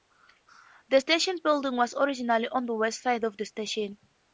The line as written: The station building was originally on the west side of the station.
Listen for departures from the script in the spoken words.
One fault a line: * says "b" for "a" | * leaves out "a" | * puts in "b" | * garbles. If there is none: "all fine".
all fine